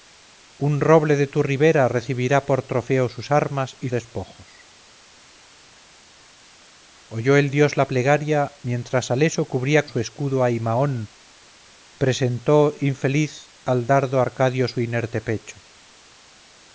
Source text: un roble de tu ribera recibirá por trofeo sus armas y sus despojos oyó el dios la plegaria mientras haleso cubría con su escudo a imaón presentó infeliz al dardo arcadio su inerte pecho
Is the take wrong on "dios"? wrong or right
right